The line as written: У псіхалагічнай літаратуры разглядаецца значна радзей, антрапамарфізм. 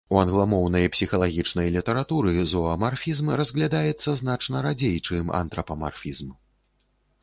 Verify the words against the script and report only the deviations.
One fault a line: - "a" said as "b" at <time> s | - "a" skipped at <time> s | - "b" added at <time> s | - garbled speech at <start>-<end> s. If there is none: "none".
- "англамоўнай" added at 0.2 s
- "зоамарфізм" added at 2.5 s
- "чым" added at 5.1 s